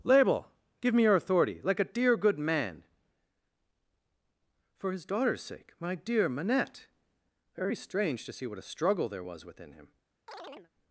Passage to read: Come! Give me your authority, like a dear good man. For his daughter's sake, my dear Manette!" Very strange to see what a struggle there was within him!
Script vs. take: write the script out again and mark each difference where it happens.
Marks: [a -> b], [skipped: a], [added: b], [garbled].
[Come! -> Label] Give me your authority, like a dear good man. For his daughter's sake, my dear Manette!" Very strange to see what a struggle there was within him!